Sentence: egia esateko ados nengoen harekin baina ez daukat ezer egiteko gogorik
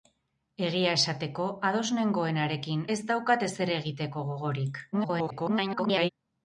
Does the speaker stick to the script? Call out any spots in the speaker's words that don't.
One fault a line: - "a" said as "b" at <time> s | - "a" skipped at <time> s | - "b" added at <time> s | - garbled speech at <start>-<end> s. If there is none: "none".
- "baina" skipped at 2.8 s
- garbled speech at 4.9-6.1 s